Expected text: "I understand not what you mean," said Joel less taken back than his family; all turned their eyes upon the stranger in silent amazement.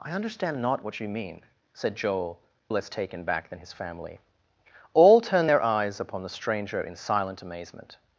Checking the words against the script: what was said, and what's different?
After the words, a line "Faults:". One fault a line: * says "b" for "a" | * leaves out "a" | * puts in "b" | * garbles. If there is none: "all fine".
"I understand not what you mean," said Joel less taken back than his family; all turned their eyes upon the stranger in silent amazement.
Faults:
all fine